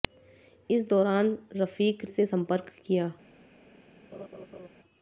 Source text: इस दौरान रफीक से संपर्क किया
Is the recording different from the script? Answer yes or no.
no